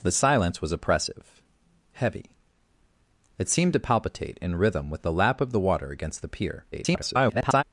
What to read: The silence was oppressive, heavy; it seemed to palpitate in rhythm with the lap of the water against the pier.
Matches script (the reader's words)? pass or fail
fail